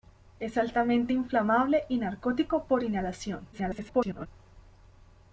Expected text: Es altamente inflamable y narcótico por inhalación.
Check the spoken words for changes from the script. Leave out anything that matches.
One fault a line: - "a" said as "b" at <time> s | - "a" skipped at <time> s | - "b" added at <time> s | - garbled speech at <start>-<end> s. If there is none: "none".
- garbled speech at 3.5-4.3 s